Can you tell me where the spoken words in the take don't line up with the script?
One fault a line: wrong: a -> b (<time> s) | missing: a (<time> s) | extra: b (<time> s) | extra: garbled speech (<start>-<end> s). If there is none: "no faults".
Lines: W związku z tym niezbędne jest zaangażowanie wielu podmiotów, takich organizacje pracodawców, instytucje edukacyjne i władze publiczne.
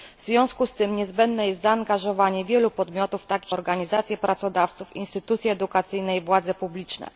no faults